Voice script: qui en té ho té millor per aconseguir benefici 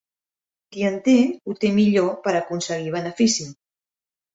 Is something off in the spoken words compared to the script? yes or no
no